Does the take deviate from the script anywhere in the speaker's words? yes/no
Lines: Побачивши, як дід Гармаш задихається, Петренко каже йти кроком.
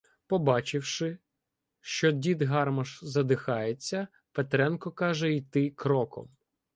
yes